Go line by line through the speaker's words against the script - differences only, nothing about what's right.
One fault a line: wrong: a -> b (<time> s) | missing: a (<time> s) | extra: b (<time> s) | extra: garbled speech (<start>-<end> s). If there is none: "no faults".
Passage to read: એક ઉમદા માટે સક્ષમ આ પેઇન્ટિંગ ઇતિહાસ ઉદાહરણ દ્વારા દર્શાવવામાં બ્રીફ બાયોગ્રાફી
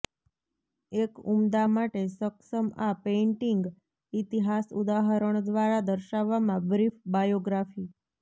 no faults